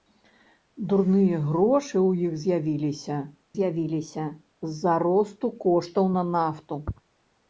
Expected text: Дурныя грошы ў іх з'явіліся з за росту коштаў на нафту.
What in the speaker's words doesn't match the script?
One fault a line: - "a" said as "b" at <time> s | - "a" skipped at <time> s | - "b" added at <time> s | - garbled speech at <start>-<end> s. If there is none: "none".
- "з'явіліся" added at 3.6 s